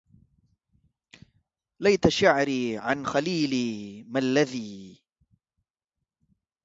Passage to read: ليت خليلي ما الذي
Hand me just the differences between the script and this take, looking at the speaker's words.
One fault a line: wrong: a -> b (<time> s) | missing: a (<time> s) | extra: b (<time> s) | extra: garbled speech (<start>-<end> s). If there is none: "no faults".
extra: شعري عن (2.1 s)